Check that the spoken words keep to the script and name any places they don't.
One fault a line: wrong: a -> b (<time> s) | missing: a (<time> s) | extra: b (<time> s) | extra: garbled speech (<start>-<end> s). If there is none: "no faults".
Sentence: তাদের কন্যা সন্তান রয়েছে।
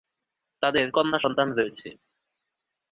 no faults